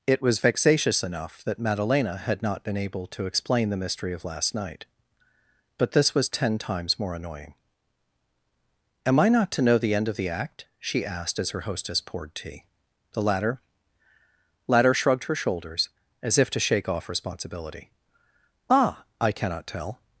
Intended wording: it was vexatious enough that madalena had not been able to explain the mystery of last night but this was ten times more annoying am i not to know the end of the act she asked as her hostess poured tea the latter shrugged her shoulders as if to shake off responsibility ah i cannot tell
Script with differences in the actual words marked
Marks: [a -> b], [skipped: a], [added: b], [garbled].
it was vexatious enough that madalena had not been able to explain the mystery of last night but this was ten times more annoying am i not to know the end of the act she asked as her hostess poured tea the latter [added: latter] shrugged her shoulders as if to shake off responsibility ah i cannot tell